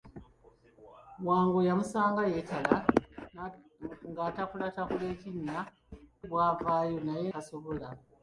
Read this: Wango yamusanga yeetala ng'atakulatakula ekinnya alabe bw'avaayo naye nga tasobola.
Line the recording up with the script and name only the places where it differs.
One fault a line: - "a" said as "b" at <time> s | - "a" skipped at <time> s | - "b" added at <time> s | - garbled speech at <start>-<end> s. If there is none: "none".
- "alabe" skipped at 5.6 s
- "nga" skipped at 7.3 s